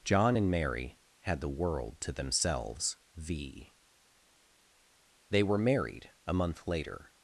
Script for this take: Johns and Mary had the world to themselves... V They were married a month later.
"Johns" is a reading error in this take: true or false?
true